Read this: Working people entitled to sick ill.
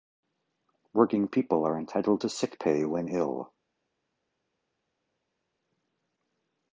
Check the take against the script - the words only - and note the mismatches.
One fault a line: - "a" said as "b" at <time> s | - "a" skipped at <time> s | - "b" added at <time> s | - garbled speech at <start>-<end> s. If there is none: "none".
- "are" added at 1.6 s
- "pay when" added at 2.6 s